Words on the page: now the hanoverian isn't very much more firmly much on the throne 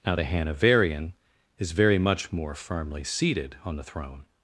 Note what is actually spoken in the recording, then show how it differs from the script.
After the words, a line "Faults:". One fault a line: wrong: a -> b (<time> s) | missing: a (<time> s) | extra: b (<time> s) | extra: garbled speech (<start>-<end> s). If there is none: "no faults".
now the hanoverian is very much more firmly seated on the throne
Faults:
wrong: isn't -> is (1.6 s)
wrong: much -> seated (3.0 s)